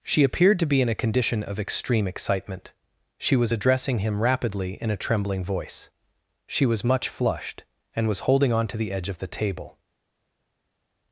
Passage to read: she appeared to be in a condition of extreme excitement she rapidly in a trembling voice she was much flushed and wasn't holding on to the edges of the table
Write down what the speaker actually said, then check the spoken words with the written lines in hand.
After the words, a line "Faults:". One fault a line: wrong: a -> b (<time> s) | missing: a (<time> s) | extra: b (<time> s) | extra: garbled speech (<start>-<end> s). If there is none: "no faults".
she appeared to be in a condition of extreme excitement she was addressing him rapidly in a trembling voice she was much flushed and was holding on to the edge of the table
Faults:
extra: was addressing him (3.4 s)
wrong: wasn't -> was (8.1 s)
wrong: edges -> edge (8.9 s)